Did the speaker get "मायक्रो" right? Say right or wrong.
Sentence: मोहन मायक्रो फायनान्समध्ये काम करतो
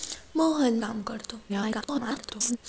wrong